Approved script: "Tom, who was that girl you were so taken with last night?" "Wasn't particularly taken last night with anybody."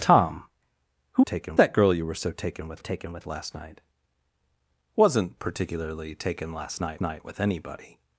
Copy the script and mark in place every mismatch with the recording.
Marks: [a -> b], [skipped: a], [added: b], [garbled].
"Tom, who [was -> taken] that girl you were so taken with [added: taken with] last night?" "Wasn't particularly taken last night [added: night] with anybody."